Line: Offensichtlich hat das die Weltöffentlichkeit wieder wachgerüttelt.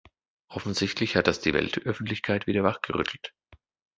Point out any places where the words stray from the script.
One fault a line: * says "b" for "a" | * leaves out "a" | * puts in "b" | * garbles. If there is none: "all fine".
all fine